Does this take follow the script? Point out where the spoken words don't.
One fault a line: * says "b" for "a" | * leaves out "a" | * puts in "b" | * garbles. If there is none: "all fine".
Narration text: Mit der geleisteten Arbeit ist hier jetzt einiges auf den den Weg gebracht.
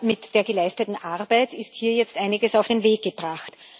* leaves out "den"